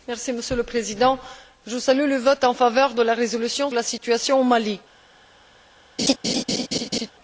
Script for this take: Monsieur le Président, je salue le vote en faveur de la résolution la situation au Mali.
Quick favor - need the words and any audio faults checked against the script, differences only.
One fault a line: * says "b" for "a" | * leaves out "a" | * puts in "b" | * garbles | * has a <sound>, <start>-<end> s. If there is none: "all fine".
* has a laugh, 6.0-7.1 s